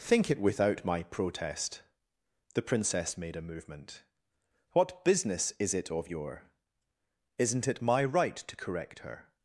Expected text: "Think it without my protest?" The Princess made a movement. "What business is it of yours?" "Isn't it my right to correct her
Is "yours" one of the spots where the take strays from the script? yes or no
yes